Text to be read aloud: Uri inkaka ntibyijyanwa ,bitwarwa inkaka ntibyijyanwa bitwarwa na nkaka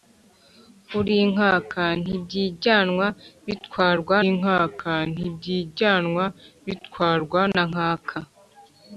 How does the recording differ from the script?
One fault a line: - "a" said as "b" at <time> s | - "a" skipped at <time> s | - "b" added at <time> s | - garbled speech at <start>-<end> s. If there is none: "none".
none